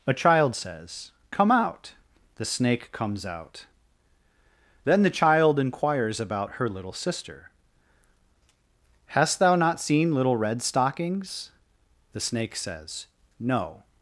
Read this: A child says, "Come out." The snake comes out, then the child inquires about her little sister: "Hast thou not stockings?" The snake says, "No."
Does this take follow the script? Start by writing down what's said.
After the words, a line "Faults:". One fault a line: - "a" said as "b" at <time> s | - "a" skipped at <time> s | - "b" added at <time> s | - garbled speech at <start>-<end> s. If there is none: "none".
A child says, "Come out." The snake comes out, then the child inquires about her little sister: "Hast thou not seen little Red stockings?" The snake says, "No."
Faults:
- "seen little Red" added at 9.8 s